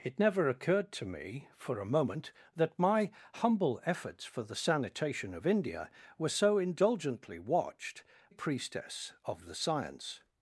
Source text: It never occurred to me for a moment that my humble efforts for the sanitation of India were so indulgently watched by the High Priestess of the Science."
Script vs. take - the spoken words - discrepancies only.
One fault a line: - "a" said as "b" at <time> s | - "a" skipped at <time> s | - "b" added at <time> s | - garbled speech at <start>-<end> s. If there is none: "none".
- "by the High" skipped at 8.0 s